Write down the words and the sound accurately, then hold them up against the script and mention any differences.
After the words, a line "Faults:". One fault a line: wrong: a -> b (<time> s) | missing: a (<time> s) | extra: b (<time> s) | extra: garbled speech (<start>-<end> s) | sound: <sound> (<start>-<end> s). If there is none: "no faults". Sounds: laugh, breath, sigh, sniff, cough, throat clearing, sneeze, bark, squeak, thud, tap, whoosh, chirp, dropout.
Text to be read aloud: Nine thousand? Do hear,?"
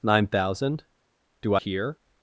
Nine thousand? Do hear,?"
Faults:
no faults